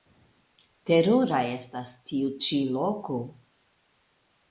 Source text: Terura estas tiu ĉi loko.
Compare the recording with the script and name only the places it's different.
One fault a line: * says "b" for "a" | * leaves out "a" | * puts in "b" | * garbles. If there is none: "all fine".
all fine